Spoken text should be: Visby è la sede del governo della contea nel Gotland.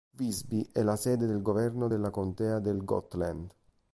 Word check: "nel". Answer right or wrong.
wrong